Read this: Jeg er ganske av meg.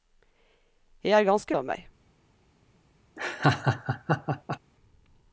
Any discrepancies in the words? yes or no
no